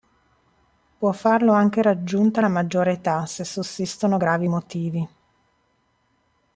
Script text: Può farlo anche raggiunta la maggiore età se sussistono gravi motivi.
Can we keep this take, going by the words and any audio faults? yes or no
yes